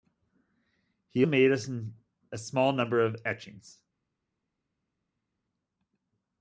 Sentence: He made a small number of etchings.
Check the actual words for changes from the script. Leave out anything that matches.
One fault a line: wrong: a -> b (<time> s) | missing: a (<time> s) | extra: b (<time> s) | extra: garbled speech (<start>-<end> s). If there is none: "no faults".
no faults